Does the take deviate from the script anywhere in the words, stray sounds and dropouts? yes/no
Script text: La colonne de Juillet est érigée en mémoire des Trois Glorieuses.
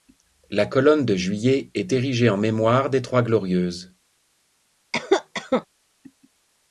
yes